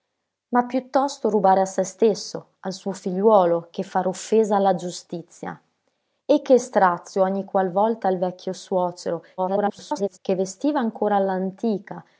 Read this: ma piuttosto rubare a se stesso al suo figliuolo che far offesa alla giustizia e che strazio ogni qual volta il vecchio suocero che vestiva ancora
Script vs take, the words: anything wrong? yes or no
yes